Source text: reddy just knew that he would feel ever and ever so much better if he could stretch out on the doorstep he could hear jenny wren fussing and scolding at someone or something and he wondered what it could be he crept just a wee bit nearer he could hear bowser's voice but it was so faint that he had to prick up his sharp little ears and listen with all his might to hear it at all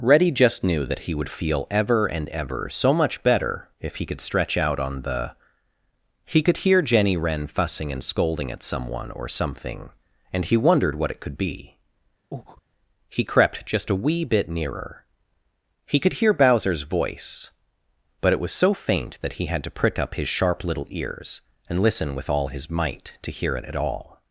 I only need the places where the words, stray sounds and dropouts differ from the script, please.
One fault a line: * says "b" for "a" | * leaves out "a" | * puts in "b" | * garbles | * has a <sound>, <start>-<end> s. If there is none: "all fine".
* leaves out "doorstep"
* has a breath, 12.3-12.6 s